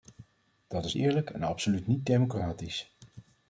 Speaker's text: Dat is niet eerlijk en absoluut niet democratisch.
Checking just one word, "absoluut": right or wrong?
right